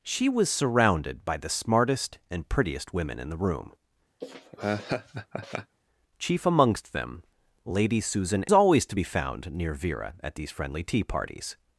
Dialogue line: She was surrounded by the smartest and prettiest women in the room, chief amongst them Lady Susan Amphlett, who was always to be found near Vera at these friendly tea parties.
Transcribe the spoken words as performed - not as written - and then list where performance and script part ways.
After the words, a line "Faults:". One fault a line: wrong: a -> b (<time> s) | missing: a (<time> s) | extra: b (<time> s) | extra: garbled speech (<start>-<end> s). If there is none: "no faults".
She was surrounded by the smartest and prettiest women in the room, chief amongst them Lady Susan Always to be found near Vera at these friendly tea parties.
Faults:
missing: Amphlett who was (8.4 s)